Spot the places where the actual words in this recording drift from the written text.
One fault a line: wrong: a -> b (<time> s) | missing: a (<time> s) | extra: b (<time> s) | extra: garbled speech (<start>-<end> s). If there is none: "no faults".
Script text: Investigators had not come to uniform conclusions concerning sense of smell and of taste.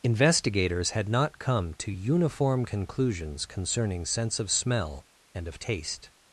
no faults